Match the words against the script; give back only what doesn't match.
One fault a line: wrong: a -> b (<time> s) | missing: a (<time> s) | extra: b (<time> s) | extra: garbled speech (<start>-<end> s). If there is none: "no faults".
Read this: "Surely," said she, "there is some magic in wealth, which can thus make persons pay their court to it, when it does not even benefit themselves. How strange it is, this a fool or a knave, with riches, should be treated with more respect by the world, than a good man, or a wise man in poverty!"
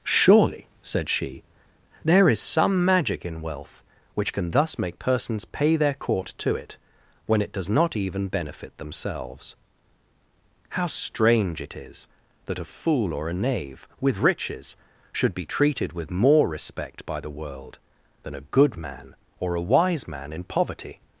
wrong: this -> that (12.4 s)